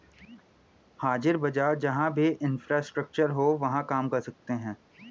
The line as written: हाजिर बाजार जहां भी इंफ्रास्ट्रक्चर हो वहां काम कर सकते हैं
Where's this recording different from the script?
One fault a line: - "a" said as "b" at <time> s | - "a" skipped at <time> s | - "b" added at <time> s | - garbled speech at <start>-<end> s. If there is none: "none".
none